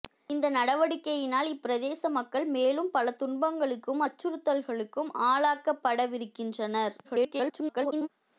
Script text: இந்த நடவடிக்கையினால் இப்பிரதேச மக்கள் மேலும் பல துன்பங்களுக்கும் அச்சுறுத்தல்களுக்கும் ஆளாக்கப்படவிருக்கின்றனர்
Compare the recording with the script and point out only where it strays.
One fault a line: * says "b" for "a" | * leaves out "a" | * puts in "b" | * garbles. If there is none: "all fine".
* garbles